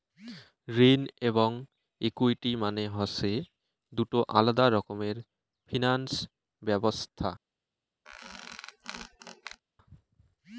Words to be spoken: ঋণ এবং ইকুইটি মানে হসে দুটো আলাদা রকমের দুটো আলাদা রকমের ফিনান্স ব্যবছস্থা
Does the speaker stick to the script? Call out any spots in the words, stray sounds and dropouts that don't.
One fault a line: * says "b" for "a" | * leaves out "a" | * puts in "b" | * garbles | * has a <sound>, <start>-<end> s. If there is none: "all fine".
* leaves out "দুটো আলাদা রকমের"
* has a squeak, 8.1-9.6 s